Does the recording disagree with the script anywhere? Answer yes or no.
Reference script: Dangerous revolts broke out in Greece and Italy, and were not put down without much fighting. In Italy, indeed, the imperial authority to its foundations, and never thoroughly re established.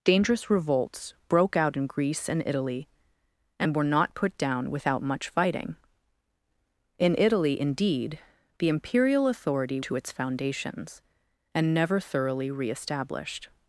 no